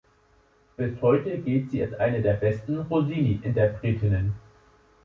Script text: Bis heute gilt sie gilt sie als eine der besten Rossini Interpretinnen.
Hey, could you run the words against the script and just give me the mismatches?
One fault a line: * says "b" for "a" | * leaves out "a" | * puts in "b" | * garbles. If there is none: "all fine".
* leaves out "gilt sie"